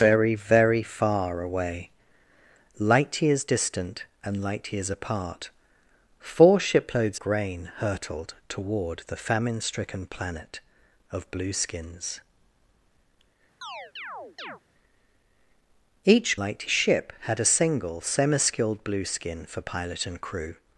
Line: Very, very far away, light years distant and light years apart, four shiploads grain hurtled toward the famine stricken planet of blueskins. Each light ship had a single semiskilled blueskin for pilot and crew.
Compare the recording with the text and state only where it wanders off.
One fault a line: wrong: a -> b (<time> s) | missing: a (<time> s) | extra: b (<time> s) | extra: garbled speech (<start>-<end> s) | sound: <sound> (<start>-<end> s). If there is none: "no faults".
sound: chirp (13.6-14.6 s)